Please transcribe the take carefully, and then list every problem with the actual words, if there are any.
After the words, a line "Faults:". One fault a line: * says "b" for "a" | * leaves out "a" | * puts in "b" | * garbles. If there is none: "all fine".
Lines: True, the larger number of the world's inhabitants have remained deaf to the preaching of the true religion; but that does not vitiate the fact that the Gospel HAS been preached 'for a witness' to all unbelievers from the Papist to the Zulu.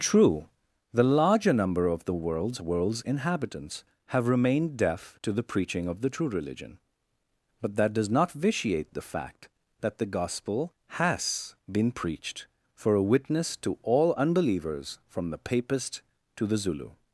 True, the larger number of the world's world's inhabitants have remained deaf to the preaching of the true religion; but that does not vitiate the fact that the Gospel HAS been preached 'for a witness' to all unbelievers from the Papist to the Zulu.
Faults:
* puts in "world's"